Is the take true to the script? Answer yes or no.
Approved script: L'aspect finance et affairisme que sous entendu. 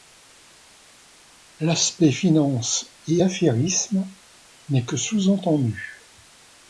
no